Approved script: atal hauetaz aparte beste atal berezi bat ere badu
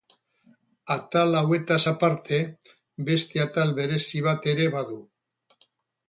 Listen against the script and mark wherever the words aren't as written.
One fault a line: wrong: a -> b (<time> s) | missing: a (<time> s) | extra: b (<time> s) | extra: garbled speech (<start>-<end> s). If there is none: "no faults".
no faults